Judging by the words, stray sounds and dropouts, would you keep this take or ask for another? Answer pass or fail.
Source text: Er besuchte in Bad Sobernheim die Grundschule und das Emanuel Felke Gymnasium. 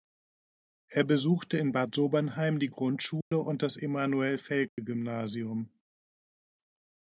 fail